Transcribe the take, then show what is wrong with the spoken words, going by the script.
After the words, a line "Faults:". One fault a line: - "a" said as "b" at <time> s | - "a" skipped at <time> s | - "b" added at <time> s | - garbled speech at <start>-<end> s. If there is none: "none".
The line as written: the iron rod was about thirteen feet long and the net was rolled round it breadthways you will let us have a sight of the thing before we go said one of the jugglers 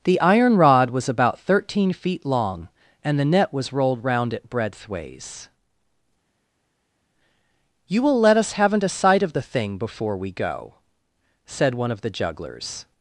the iron rod was about thirteen feet long and the net was rolled round it breadthways you will let us haven't a sight of the thing before we go said one of the jugglers
Faults:
- "have" said as "haven't" at 8.5 s